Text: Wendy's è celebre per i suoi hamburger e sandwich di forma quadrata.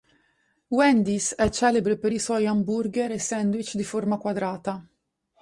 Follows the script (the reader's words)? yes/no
yes